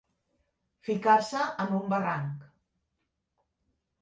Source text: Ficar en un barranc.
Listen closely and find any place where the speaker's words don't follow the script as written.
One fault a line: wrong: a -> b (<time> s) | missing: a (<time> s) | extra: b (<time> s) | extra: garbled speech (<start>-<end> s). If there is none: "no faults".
extra: se (1.2 s)